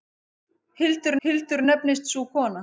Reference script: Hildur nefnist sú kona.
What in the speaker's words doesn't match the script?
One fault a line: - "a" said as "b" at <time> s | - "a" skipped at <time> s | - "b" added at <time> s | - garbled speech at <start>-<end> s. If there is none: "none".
- "hildur" added at 1.3 s